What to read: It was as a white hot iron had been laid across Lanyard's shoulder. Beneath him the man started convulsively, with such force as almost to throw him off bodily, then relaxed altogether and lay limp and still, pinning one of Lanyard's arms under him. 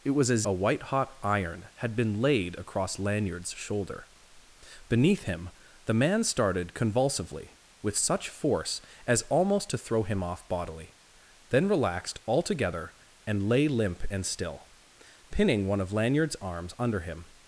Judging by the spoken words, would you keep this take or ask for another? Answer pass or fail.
pass